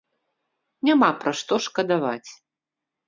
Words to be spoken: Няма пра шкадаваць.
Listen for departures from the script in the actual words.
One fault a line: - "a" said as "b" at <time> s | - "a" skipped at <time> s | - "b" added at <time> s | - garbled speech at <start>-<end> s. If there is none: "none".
- "што" added at 1.4 s